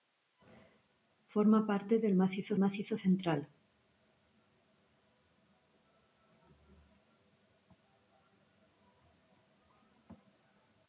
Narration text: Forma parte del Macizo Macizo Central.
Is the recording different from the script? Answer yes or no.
no